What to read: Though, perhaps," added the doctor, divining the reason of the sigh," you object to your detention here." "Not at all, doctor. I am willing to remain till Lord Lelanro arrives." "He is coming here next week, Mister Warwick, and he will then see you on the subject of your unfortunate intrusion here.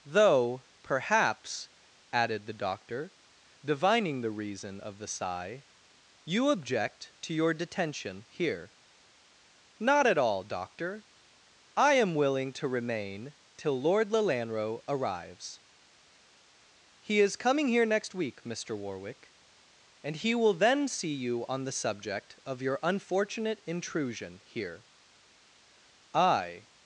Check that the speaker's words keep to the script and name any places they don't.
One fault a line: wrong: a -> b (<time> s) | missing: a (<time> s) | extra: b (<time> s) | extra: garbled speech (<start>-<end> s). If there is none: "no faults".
extra: I (26.1 s)